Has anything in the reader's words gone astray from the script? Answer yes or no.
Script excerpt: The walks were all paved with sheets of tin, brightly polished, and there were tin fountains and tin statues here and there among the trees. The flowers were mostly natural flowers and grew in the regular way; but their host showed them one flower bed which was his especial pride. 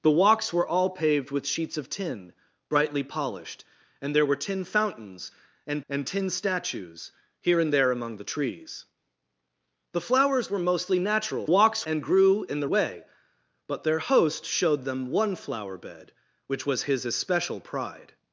yes